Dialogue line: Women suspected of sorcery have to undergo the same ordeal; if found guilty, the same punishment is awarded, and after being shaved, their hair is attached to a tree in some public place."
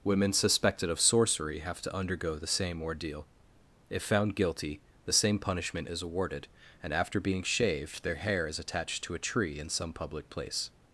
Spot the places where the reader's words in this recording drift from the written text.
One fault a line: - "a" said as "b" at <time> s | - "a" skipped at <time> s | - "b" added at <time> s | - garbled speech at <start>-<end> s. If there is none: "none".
none